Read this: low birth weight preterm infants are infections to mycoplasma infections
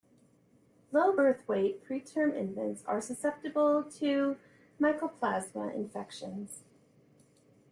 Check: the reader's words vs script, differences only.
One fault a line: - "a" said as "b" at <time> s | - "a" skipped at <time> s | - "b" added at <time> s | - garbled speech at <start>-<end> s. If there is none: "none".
- "infections" said as "susceptible" at 3.0 s